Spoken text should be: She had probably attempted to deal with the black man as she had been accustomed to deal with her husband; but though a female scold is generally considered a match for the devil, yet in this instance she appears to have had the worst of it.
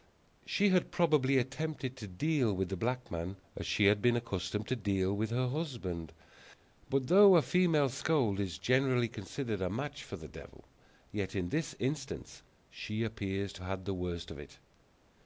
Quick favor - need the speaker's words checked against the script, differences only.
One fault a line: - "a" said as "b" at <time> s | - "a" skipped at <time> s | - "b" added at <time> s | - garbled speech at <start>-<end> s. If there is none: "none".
- "have" skipped at 13.6 s